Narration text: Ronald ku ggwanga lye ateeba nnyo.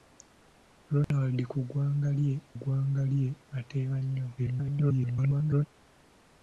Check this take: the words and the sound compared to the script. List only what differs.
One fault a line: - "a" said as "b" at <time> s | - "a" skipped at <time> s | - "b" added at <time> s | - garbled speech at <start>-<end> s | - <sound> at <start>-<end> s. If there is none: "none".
- dropout at 1.0-1.1 s
- "ggwanga lye" added at 2.6 s
- garbled speech at 4.4-5.7 s